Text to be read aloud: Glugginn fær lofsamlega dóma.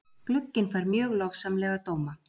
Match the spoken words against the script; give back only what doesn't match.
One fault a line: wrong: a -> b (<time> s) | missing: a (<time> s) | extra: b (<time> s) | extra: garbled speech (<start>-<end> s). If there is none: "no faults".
extra: mjög (0.9 s)